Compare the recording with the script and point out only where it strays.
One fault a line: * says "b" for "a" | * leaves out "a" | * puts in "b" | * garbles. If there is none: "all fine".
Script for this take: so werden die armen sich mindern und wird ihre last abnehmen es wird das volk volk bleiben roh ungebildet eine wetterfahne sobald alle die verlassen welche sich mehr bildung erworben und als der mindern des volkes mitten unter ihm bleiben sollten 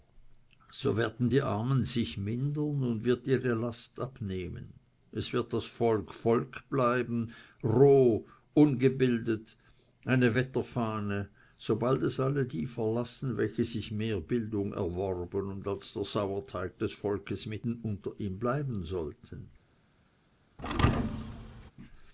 * puts in "es"
* says "sauerteig" for "mindern"